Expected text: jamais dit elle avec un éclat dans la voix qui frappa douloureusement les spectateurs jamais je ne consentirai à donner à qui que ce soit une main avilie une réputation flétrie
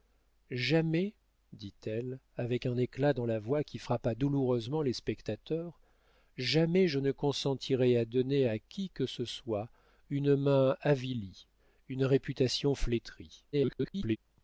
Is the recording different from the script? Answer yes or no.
yes